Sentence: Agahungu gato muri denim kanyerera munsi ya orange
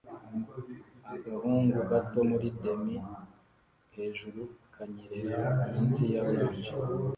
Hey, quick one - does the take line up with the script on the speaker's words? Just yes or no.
no